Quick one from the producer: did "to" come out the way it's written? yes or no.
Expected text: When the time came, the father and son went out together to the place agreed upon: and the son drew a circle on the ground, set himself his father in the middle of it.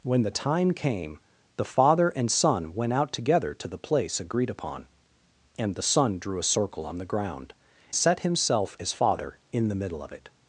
yes